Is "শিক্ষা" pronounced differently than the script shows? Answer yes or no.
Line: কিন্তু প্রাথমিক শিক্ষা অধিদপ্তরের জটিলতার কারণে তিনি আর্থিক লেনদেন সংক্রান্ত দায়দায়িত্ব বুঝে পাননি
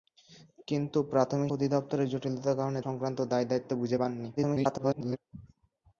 yes